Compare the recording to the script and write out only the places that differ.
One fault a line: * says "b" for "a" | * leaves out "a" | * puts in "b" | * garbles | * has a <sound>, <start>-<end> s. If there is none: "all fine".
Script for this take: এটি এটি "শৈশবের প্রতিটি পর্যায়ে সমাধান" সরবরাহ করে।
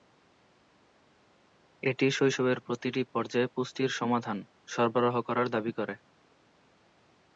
* leaves out "এটি"
* puts in "পুষ্টির"
* puts in "করার দাবি"